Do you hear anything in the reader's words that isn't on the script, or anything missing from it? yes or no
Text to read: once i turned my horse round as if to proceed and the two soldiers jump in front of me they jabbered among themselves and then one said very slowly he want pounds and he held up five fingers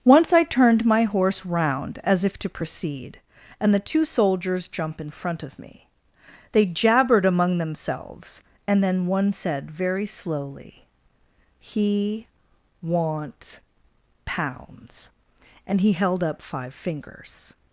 no